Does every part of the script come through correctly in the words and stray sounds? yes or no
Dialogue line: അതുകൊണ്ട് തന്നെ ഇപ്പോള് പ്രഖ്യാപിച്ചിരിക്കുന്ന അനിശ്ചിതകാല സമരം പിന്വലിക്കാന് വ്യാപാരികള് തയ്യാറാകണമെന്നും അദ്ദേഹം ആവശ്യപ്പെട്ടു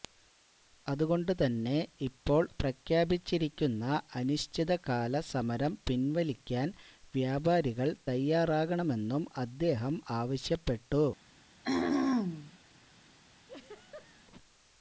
no